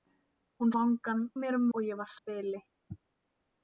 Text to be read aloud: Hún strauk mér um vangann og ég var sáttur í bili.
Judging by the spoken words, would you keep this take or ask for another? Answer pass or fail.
fail